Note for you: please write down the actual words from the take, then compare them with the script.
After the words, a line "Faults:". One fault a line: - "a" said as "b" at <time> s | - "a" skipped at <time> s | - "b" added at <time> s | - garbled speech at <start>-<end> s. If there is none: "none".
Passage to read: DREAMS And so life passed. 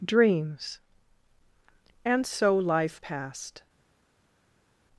DREAMS And so life passed.
Faults:
none